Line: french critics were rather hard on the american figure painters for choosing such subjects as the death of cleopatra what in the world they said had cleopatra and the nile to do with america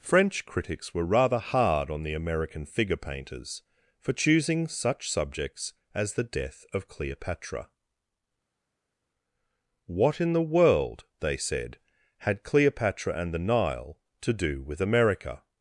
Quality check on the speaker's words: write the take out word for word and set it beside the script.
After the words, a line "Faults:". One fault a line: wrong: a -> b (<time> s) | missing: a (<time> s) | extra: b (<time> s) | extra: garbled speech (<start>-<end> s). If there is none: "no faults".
french critics were rather hard on the american figure painters for choosing such subjects as the death of cleopatra what in the world they said had cleopatra and the nile to do with america
Faults:
no faults